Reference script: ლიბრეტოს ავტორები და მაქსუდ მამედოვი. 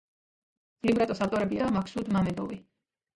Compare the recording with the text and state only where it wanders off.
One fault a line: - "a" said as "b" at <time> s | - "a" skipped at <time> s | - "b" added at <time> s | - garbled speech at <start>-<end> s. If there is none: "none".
none